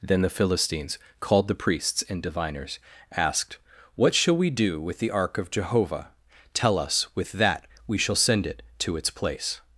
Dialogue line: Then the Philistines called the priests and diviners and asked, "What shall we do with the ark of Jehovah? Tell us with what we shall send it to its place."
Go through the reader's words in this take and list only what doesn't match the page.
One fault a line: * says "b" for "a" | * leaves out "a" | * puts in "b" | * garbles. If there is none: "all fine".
* leaves out "and"
* says "that" for "what"